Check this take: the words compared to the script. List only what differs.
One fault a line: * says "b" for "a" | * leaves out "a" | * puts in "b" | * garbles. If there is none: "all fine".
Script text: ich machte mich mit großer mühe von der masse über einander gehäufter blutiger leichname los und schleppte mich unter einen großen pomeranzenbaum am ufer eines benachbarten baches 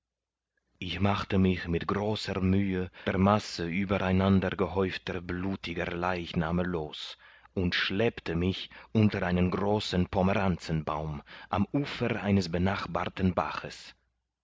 * leaves out "von"